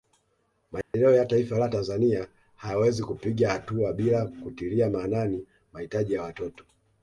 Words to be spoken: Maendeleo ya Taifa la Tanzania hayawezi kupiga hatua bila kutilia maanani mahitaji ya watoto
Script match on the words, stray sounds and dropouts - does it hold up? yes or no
no